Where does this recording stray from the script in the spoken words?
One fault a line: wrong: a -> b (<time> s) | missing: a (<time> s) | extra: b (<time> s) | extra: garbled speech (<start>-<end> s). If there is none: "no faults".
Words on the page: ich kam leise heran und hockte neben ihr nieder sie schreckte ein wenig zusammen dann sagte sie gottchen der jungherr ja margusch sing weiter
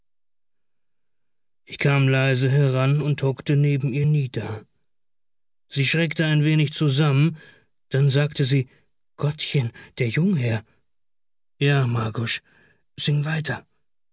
no faults